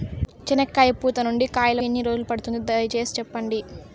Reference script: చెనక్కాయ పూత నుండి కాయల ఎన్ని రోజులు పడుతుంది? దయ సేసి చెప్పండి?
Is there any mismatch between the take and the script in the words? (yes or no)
no